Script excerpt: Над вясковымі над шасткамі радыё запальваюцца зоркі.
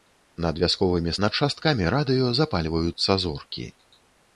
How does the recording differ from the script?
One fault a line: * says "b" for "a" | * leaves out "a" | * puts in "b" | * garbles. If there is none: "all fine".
all fine